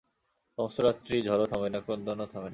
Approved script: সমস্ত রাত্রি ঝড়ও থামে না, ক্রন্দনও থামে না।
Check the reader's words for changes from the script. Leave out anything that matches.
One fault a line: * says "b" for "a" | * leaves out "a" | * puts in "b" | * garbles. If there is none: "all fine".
all fine